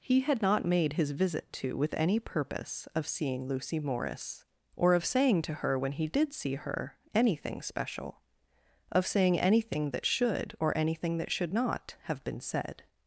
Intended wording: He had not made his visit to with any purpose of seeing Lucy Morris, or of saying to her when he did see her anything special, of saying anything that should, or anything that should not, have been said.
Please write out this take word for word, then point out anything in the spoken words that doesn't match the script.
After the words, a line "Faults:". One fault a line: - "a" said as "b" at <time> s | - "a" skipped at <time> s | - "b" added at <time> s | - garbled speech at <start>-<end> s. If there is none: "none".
He had not made his visit to with any purpose of seeing Lucy Morris, or of saying to her when he did see her anything special, of saying anything that should, or anything that should not, have been said.
Faults:
none